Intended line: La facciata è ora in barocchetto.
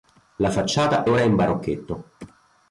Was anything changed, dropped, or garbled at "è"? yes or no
yes